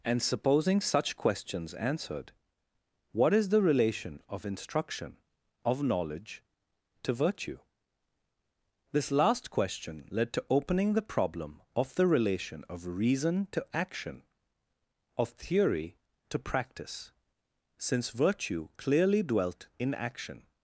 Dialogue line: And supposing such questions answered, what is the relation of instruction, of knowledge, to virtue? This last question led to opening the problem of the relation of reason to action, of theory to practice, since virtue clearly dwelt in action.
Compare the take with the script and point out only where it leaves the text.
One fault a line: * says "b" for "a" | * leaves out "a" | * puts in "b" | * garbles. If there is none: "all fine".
all fine